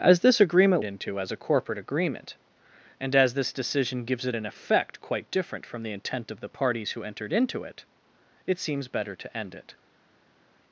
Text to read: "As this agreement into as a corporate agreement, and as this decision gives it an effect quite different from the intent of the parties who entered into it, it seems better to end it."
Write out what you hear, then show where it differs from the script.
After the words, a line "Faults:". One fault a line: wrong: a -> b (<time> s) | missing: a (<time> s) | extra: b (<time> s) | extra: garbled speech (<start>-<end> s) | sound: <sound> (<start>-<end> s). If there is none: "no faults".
"As this agreement into as a corporate agreement, and as this decision gives it an effect quite different from the intent of the parties who entered into it, it seems better to end it."
Faults:
no faults